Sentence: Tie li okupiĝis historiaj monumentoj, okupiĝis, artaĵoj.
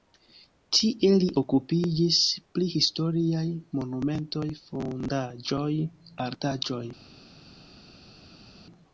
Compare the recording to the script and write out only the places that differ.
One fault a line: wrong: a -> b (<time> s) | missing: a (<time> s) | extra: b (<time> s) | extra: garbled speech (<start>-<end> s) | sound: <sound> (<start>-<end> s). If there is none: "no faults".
extra: pri (2.6 s)
wrong: okupiĝis -> fondaĵoj (4.7 s)